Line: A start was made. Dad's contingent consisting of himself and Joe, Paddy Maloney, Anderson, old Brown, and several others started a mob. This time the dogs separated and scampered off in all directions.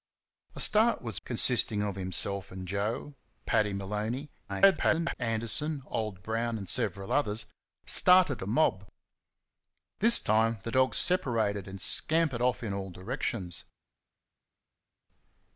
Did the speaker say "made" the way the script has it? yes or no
no